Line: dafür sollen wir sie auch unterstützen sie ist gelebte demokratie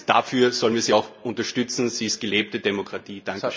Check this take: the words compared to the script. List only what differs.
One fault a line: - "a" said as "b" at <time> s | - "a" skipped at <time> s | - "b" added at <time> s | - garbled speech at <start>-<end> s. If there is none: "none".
none